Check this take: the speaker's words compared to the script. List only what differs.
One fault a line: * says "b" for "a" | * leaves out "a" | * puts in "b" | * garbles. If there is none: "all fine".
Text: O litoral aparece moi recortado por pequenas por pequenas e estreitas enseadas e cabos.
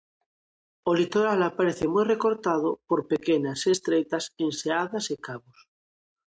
* leaves out "por pequenas"